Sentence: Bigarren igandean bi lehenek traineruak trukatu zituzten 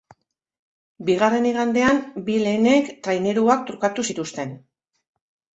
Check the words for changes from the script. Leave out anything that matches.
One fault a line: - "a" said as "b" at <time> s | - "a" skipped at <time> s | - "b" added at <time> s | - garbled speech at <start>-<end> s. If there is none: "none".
none